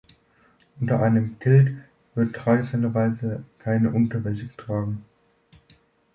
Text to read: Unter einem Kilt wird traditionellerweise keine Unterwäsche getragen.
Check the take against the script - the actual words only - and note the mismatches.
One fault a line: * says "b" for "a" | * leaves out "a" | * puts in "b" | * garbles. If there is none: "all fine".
all fine